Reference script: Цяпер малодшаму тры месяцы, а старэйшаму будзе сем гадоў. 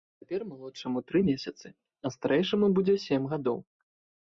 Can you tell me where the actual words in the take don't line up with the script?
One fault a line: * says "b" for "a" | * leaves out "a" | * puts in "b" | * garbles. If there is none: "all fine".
all fine